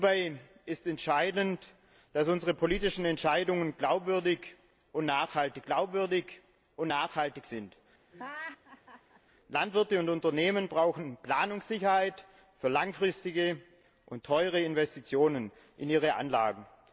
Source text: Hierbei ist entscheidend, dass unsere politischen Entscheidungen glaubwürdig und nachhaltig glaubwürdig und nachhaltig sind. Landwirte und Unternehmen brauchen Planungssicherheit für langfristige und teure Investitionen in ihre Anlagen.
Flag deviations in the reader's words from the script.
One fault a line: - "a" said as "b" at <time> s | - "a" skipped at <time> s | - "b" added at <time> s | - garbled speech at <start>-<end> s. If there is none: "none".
none